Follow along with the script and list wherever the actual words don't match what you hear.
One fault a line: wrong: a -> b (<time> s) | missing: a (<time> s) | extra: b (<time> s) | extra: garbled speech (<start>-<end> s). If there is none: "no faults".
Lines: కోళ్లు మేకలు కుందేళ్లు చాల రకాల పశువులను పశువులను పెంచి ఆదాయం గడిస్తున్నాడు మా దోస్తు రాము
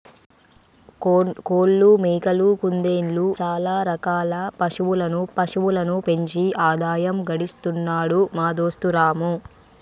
no faults